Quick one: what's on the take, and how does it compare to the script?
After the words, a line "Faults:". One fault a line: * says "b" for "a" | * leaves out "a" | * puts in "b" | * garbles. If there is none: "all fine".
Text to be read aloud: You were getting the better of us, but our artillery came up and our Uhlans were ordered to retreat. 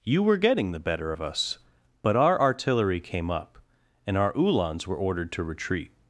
You were getting the better of us, but our artillery came up and our Uhlans were ordered to retreat.
Faults:
all fine